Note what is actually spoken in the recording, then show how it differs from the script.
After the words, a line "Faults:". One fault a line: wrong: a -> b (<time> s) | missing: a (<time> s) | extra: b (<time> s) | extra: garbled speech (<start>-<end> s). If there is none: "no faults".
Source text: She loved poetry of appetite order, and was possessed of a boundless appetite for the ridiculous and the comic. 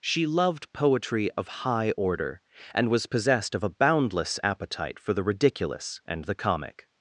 She loved poetry of high order, and was possessed of a boundless appetite for the ridiculous and the comic.
Faults:
wrong: appetite -> high (1.5 s)